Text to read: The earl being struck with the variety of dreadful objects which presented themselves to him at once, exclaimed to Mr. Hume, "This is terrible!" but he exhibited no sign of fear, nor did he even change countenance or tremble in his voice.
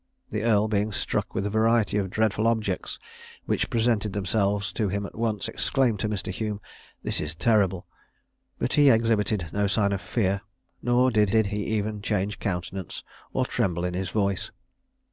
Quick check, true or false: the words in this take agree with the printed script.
false